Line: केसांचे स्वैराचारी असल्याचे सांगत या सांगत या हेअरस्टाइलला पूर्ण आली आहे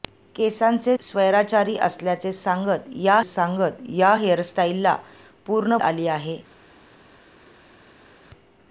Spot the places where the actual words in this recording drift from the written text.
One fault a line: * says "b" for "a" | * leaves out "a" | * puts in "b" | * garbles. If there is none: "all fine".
all fine